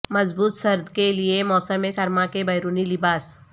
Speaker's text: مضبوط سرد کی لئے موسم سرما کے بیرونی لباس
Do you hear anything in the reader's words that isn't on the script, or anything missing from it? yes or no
yes